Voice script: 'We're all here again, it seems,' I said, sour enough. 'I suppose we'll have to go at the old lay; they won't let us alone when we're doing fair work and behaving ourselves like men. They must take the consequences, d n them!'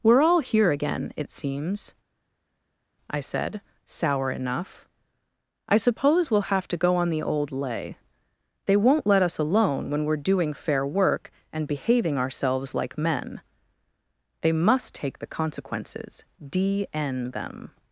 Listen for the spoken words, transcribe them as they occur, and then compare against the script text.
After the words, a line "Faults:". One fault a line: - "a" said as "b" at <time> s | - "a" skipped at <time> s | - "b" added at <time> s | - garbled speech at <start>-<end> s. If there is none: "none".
'We're all here again, it seems,' I said, sour enough. 'I suppose we'll have to go on the old lay; they won't let us alone when we're doing fair work and behaving ourselves like men. They must take the consequences, d n them!'
Faults:
- "at" said as "on" at 7.0 s